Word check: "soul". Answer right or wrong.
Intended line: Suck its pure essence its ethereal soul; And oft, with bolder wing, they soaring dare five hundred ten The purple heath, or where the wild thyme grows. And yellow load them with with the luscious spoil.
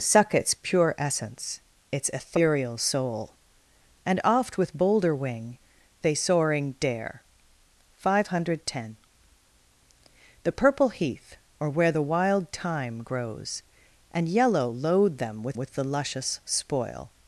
right